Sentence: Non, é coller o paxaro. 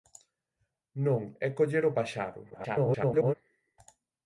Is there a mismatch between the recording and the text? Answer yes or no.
yes